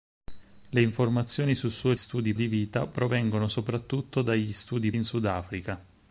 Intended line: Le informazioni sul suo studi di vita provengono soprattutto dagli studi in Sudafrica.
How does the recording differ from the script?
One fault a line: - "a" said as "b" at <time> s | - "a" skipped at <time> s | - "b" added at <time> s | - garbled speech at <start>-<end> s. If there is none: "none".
none